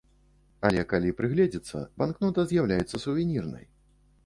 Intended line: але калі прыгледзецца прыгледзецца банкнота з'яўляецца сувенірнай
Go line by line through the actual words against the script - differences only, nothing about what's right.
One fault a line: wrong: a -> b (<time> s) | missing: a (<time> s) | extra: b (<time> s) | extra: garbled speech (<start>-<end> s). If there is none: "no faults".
missing: прыгледзецца (1.8 s)